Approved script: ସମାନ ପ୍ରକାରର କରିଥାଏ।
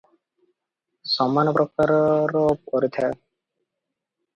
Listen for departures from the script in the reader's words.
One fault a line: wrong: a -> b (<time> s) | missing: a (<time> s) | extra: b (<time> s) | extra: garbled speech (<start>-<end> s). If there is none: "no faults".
no faults